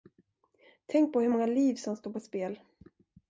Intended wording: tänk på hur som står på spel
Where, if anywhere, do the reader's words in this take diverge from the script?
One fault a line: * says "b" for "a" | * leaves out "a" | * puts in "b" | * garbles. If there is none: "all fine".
* puts in "många liv"